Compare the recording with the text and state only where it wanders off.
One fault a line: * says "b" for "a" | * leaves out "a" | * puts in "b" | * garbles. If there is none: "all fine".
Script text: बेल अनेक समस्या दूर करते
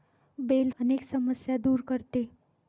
all fine